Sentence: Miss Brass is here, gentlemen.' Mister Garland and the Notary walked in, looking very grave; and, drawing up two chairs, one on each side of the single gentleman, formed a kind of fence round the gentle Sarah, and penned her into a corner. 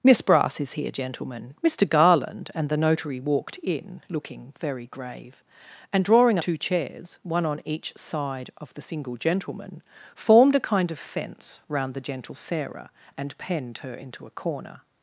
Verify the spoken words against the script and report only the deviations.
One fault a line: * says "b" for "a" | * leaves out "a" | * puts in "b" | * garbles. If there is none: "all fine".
* leaves out "up"